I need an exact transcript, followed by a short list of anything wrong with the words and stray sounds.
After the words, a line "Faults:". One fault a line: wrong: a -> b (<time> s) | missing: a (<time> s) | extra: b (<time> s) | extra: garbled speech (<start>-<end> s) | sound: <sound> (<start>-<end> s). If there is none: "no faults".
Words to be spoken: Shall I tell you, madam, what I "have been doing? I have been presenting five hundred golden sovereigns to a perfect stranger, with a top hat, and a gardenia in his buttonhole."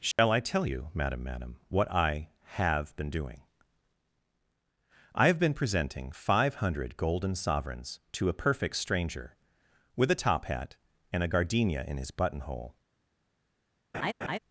Shall I tell you, madam madam, what I "have been doing? I have been presenting five hundred golden sovereigns to a perfect stranger, with a top hat, and a gardenia in his buttonhole."
Faults:
sound: dropout (0.1-0.2 s)
extra: madam (1.2 s)
sound: laugh (13.9-14.4 s)